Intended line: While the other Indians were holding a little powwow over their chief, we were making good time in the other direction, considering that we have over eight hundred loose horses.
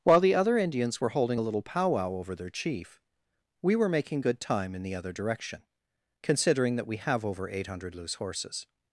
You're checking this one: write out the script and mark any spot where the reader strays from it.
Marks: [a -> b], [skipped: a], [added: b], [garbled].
While the other Indians were holding a little powwow over their chief, we were making good time in the other direction, considering that we have over eight hundred loose horses.